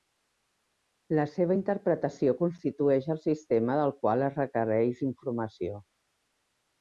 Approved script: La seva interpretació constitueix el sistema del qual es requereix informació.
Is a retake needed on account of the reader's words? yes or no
no